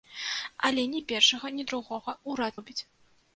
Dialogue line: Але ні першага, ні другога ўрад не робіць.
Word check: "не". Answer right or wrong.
wrong